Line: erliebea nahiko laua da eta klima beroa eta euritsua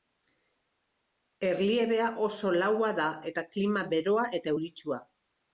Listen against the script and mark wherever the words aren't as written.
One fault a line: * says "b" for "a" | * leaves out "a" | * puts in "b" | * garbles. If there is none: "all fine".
* says "oso" for "nahiko"